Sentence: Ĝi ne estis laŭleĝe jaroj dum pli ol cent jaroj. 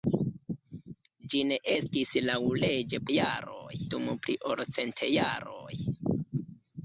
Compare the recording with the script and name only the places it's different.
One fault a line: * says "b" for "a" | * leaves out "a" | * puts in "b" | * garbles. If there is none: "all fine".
all fine